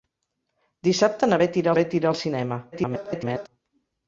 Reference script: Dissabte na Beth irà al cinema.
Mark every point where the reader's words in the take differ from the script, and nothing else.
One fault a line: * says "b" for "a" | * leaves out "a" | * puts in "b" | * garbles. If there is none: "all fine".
* puts in "Beth irà"
* garbles